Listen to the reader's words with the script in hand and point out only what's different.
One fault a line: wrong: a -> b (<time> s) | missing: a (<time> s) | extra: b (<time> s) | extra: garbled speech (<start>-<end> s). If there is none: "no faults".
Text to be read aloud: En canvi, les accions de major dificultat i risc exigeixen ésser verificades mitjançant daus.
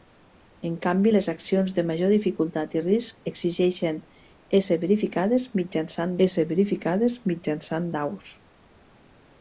extra: ésser verificades mitjançant (6.3 s)